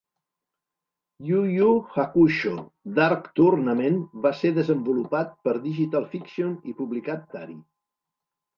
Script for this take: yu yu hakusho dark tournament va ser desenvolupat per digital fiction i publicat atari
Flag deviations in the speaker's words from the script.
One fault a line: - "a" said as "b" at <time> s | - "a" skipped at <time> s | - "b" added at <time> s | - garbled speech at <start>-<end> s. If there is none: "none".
none